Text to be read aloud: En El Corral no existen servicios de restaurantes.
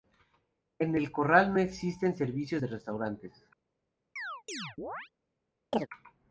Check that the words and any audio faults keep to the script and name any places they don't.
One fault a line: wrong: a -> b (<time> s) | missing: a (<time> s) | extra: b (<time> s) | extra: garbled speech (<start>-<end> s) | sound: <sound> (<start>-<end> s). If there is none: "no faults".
sound: chirp (4.2-5.1 s)
sound: chirp (5.7-5.9 s)